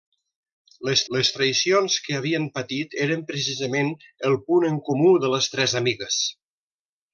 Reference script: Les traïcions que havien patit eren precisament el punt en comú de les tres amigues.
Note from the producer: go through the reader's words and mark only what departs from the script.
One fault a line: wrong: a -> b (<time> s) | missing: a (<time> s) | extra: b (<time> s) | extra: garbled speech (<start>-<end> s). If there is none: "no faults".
extra: les (1.1 s)